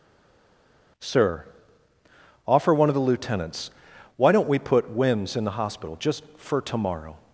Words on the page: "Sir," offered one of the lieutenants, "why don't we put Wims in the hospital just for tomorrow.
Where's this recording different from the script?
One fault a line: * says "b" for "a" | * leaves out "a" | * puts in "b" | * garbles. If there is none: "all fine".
* says "offer" for "offered"